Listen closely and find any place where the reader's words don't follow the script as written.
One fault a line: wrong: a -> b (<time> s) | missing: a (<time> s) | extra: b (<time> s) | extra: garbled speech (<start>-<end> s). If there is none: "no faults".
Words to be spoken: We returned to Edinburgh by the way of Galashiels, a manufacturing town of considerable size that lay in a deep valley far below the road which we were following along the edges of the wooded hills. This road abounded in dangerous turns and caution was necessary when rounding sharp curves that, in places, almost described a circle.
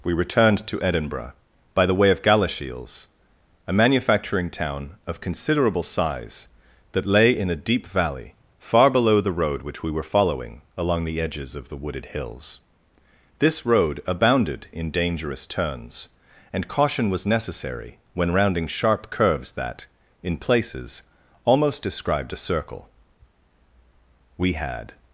extra: We had (24.4 s)